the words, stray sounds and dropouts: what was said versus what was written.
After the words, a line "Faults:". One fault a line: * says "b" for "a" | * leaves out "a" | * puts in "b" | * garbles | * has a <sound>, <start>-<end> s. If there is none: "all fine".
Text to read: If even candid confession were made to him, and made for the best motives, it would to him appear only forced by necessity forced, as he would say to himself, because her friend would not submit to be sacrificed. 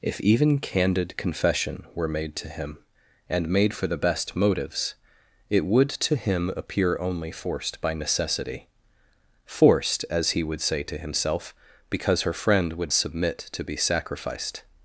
If even candid confession were made to him, and made for the best motives, it would to him appear only forced by necessity forced, as he would say to himself, because her friend would submit to be sacrificed.
Faults:
* leaves out "not"